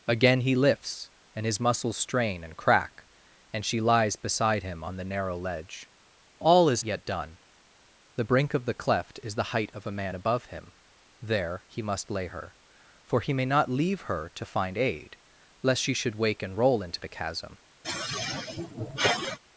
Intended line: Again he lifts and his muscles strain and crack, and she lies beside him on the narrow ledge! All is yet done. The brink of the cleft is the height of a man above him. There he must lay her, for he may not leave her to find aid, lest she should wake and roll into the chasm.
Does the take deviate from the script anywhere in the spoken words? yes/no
no